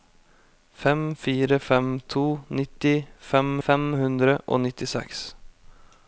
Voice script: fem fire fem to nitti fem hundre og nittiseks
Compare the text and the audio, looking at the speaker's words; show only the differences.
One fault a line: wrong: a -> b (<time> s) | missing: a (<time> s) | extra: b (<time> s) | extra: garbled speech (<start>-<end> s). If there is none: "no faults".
extra: fem (3.7 s)